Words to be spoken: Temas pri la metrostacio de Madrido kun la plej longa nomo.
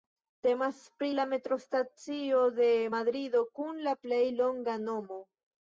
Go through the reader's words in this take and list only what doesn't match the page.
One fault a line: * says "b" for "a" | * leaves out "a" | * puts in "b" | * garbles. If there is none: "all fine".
all fine